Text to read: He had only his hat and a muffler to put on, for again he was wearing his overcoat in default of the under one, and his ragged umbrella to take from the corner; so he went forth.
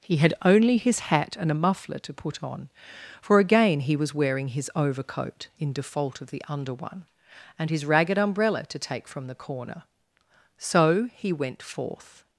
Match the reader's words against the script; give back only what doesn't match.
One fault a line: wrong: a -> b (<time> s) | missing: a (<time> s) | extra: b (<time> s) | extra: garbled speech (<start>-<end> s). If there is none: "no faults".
no faults